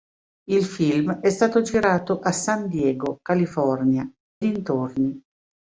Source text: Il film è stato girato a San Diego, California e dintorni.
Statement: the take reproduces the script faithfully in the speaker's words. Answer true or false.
false